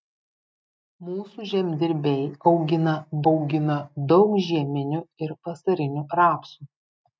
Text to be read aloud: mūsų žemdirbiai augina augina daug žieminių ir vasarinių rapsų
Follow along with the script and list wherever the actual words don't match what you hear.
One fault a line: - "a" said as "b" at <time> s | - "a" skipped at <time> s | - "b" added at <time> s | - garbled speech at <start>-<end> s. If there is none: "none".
none